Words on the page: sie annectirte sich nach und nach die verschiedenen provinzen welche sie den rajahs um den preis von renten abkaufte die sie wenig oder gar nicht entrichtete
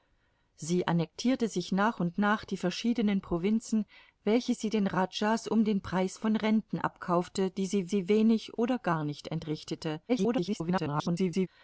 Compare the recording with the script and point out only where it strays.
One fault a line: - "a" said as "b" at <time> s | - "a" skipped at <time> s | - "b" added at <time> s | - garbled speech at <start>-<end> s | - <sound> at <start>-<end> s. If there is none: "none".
- "sie" added at 7.9 s
- garbled speech at 10.1-11.5 s